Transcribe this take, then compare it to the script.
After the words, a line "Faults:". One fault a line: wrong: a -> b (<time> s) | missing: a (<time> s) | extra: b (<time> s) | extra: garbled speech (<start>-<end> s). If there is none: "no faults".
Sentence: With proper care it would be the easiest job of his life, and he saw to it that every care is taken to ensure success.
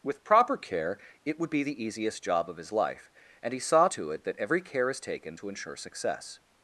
With proper care it would be the easiest job of his life, and he saw to it that every care is taken to ensure success.
Faults:
no faults